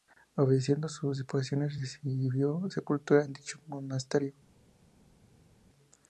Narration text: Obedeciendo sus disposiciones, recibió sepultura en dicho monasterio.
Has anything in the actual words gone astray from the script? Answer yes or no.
no